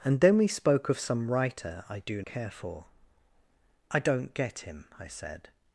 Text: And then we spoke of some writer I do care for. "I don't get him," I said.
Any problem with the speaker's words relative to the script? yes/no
no